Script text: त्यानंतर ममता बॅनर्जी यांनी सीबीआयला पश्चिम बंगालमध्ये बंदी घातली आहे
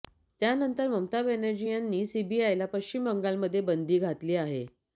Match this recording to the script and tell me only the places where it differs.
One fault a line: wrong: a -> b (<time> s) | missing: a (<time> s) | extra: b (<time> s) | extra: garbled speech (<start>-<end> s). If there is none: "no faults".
no faults